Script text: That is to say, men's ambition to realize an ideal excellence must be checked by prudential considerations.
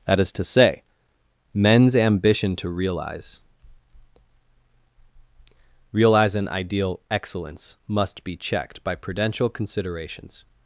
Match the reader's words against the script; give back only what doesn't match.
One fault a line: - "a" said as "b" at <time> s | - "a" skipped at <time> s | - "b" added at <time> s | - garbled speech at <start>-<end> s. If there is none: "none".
- "realize" added at 5.9 s